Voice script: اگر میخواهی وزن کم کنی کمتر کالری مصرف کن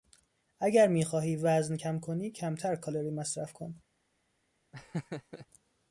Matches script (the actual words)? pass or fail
pass